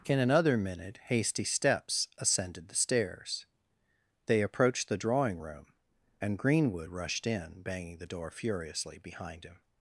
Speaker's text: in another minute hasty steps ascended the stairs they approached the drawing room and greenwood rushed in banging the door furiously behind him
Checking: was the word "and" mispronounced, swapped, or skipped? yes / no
no